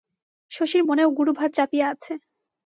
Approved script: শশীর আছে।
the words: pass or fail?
fail